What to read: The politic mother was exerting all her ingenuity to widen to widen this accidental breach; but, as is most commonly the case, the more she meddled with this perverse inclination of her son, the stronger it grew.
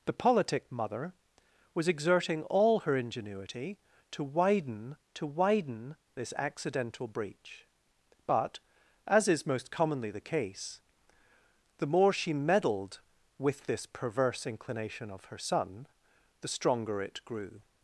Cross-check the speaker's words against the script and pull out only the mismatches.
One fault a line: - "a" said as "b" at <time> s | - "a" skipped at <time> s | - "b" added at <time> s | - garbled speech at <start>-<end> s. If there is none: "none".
none